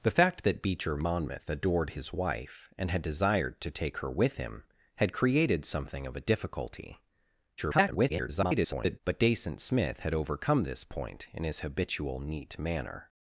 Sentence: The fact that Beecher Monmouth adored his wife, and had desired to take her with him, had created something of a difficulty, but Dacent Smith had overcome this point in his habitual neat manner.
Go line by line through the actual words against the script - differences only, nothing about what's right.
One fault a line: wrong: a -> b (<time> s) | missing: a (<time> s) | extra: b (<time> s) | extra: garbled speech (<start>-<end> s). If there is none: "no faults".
extra: garbled speech (7.6-9.0 s)